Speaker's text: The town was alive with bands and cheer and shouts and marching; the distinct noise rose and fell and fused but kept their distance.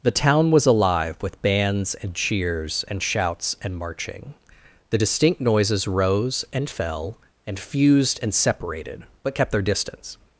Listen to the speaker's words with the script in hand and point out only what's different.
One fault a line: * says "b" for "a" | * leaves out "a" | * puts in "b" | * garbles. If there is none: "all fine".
* says "cheers" for "cheer"
* says "noises" for "noise"
* puts in "and separated"